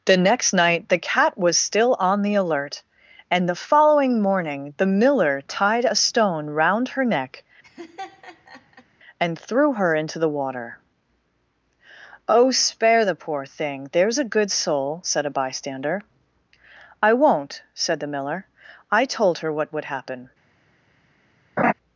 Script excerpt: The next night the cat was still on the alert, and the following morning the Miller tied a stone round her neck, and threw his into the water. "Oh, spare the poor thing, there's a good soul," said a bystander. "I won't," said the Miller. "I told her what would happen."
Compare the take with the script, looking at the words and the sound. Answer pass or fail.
fail